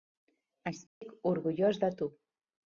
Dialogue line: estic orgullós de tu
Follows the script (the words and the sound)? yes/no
no